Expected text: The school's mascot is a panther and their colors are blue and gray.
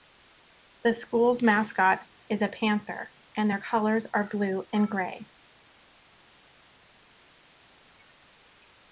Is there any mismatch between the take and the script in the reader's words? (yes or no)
no